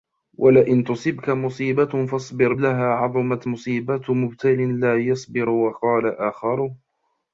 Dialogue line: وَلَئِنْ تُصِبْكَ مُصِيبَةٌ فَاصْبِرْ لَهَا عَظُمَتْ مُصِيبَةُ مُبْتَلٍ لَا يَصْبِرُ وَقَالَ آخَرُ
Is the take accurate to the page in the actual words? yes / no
yes